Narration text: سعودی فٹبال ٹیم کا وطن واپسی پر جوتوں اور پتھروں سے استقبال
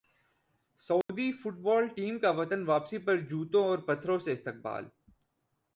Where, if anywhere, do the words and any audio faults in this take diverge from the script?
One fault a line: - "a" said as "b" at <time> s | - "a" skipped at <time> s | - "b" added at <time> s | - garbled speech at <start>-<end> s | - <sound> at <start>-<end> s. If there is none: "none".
- dropout at 1.0-1.1 s